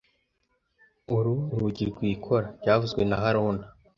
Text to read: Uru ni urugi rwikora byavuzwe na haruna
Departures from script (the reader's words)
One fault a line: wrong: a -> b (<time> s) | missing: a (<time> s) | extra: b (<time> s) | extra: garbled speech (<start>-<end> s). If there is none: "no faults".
missing: ni (1.4 s)